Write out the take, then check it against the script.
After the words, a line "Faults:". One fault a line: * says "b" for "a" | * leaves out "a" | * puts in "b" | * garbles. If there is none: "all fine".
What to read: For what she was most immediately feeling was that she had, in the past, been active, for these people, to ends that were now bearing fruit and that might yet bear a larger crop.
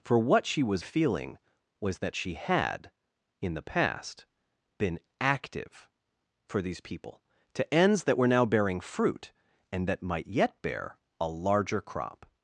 For what she was feeling was that she had, in the past, been active, for these people, to ends that were now bearing fruit and that might yet bear a larger crop.
Faults:
* leaves out "most immediately"